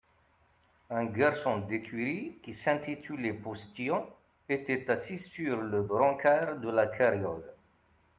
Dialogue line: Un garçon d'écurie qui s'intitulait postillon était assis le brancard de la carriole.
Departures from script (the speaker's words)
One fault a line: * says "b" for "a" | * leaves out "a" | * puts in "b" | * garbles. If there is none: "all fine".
* puts in "sur"